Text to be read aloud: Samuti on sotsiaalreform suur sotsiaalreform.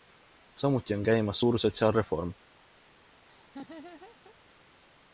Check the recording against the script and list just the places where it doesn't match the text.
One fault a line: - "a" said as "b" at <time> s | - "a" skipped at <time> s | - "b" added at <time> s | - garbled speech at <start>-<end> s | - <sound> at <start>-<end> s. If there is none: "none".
- "sotsiaalreform" said as "käimas" at 1.0 s
- laugh at 3.3-4.4 s